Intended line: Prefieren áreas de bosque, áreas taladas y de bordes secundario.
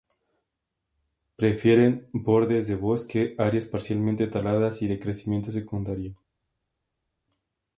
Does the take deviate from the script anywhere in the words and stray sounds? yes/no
yes